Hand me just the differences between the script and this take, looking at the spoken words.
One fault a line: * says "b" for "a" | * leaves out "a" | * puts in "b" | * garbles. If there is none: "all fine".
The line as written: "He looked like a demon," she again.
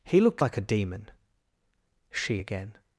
all fine